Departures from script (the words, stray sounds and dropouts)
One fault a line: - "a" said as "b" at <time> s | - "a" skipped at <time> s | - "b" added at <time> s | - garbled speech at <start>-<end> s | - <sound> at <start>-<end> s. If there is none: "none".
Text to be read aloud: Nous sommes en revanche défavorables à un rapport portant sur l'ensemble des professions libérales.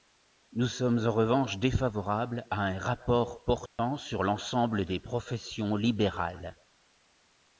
- dropout at 3.7-3.8 s